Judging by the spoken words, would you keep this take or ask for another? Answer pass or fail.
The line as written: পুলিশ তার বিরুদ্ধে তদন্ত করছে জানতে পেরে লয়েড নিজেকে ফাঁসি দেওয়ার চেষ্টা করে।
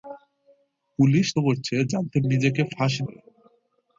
fail